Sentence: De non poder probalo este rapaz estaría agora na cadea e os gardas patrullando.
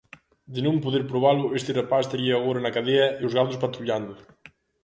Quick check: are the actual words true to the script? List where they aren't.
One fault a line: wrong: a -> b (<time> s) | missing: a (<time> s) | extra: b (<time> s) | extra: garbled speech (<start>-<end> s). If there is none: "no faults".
no faults